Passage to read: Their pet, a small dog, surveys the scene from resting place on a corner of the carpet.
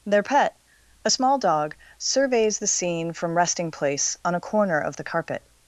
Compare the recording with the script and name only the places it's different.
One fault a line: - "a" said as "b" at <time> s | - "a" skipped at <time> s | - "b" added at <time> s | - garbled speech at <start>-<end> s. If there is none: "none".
none